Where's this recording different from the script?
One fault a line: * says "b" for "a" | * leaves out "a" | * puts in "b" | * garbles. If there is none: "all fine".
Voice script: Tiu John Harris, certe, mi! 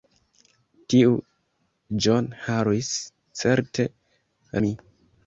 all fine